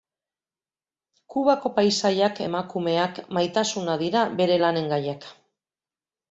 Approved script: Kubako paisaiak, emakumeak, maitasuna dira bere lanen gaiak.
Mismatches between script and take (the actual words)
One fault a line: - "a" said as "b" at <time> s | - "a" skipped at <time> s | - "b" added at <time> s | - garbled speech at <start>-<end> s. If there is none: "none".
none